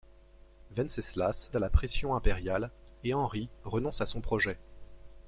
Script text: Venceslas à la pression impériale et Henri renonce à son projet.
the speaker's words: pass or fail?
pass